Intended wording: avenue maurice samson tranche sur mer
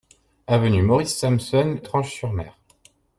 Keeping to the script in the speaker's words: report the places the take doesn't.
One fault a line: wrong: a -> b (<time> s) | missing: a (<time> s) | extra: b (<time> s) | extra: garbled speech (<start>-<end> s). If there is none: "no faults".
no faults